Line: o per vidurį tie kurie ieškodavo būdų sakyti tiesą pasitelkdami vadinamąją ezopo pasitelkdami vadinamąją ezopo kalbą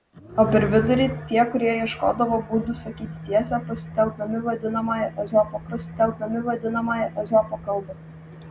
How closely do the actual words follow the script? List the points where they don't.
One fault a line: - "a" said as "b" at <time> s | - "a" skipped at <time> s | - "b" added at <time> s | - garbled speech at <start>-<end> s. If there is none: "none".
none